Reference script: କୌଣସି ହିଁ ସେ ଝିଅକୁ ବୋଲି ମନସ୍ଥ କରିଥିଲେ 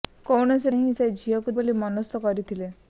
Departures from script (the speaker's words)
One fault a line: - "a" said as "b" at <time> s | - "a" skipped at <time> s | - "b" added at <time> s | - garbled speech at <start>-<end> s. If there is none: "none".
none